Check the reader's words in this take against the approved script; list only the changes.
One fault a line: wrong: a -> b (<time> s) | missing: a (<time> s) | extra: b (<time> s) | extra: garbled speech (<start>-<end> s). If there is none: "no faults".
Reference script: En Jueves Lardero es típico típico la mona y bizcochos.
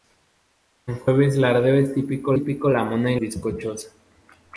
no faults